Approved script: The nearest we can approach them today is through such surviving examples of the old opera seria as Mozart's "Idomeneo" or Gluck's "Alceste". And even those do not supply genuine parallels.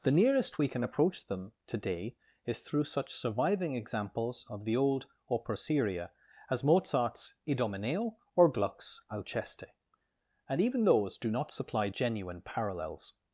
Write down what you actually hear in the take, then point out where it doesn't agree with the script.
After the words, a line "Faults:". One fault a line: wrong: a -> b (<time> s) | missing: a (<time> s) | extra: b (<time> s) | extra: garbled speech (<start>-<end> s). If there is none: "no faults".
The nearest we can approach them today is through such surviving examples of the old opera seria as Mozart's "Idomeneo" or Gluck's "Alceste". And even those do not supply genuine parallels.
Faults:
no faults